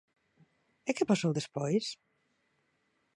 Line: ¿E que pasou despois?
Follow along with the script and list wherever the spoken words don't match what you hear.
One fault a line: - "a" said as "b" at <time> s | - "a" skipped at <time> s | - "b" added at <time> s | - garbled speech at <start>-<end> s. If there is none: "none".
none